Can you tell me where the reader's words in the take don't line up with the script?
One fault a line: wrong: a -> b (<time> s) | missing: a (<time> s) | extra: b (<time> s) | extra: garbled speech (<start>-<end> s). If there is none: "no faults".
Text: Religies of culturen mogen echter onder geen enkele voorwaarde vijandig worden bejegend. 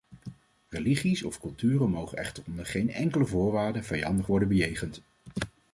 no faults